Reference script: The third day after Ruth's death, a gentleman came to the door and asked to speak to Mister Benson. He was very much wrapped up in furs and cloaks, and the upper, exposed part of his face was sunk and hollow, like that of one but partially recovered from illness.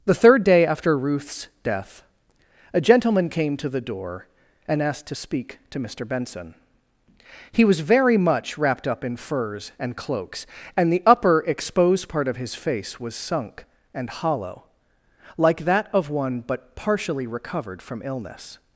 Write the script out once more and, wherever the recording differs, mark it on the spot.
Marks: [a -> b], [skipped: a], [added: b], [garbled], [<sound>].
The third day after Ruth's death, a gentleman came to the door and asked to speak to Mister Benson. He was very much wrapped up in furs and cloaks, and the upper, exposed part of his face was sunk and hollow, like that of one but partially recovered from illness.